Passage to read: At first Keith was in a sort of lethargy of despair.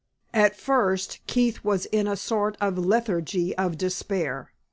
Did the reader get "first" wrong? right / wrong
right